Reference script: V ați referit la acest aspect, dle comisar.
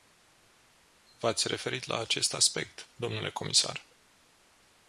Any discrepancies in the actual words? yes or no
no